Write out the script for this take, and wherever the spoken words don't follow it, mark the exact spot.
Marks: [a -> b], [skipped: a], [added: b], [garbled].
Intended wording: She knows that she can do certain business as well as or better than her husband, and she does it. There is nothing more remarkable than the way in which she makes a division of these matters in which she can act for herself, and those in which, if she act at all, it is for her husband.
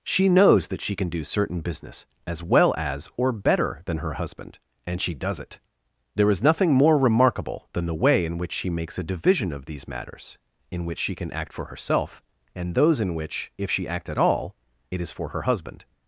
She knows that she can do certain business as well as or better than her husband, and she does it. There is nothing more remarkable than the way in which she makes a division of these matters in which she can act for herself, and those in which, if she act at all, it is for her husband.